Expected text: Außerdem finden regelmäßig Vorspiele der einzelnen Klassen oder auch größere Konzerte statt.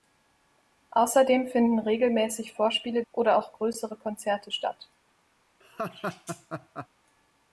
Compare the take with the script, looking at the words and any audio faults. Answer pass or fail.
fail